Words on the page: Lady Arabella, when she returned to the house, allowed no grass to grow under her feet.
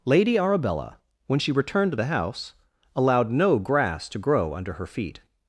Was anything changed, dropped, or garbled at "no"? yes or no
no